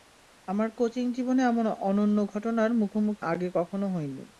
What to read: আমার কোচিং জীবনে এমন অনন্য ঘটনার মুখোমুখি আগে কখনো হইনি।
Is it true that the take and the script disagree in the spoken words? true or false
false